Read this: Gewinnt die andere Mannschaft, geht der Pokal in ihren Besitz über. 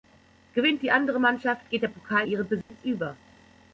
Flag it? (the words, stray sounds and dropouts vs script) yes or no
yes